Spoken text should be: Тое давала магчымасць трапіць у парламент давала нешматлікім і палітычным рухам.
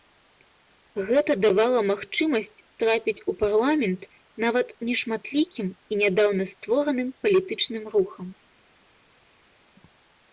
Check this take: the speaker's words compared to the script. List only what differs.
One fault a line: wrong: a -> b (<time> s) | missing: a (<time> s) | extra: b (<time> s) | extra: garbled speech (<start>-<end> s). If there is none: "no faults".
wrong: Тое -> Гэта (1.1 s)
wrong: давала -> нават (4.5 s)
extra: нядаўна створаным (6.0 s)